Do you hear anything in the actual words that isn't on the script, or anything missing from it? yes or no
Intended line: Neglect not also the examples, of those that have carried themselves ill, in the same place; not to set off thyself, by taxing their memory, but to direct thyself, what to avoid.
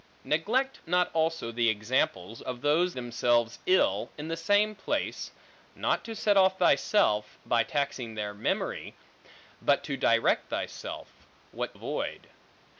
yes